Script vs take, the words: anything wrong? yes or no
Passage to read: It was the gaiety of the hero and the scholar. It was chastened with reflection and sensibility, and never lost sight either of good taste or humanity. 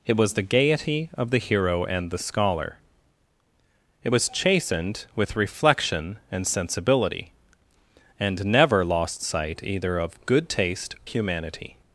yes